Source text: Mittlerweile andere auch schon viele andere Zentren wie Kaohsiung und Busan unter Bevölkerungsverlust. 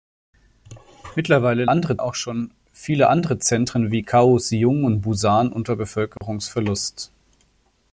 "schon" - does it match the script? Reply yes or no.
yes